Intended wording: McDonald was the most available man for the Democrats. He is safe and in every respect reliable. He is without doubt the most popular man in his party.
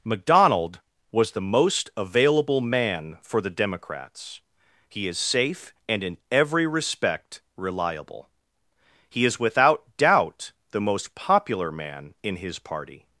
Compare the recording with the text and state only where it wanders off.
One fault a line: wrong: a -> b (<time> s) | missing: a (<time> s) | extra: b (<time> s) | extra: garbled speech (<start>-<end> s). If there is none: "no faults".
no faults